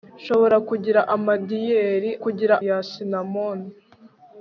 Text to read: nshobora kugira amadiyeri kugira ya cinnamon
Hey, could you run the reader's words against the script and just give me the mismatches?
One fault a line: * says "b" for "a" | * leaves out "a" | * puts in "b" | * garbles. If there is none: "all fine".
all fine